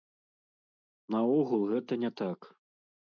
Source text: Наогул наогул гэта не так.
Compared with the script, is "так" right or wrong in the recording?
right